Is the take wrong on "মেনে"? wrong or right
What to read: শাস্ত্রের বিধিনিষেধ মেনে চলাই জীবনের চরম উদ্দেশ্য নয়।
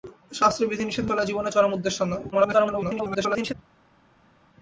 wrong